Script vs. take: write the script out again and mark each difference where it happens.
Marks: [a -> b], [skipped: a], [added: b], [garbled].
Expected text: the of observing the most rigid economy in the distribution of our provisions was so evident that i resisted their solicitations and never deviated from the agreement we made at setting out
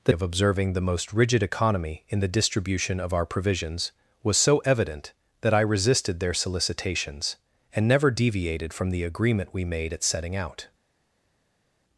the of observing the most rigid economy in the distribution of our provisions was so evident that i resisted their solicitations and never deviated from the agreement we made at setting out